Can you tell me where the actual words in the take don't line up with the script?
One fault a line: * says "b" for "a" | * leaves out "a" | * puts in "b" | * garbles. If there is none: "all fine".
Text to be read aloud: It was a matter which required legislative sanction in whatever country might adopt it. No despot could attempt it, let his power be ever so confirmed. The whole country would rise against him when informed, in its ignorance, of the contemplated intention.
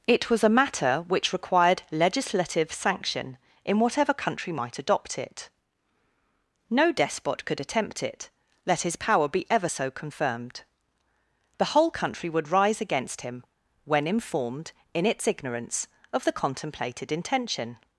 all fine